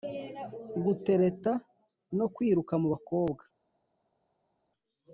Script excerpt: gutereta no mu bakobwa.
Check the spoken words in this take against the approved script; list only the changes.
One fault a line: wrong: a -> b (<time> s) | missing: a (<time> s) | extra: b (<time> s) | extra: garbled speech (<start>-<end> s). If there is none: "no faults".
extra: kwiruka (2.3 s)